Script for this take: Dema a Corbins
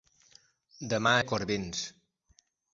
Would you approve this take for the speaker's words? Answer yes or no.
yes